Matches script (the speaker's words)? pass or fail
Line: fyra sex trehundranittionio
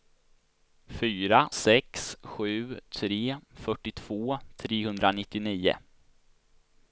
fail